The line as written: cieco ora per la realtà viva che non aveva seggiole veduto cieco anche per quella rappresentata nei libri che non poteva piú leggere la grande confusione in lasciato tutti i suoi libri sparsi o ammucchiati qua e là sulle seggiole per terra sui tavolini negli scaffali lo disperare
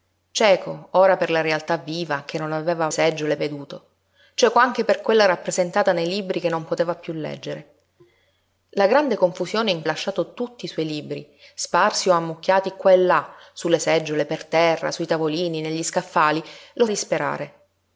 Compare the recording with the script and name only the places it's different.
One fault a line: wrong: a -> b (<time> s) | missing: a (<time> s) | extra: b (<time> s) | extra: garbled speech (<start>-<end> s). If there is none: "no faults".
no faults